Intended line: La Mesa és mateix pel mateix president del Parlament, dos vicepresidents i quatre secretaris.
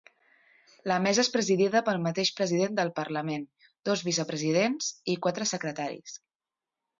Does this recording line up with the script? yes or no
no